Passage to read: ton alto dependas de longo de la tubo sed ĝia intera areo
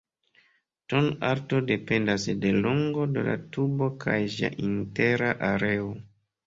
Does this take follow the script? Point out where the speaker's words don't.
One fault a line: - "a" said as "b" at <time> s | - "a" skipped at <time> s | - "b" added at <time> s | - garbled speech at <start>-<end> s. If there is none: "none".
- "sed" said as "kaj" at 4.1 s